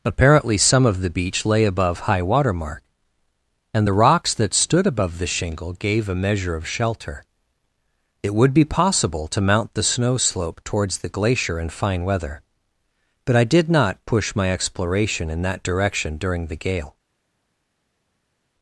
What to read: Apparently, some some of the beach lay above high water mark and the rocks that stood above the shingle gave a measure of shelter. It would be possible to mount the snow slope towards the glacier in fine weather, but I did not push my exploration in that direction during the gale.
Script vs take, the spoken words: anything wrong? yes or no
yes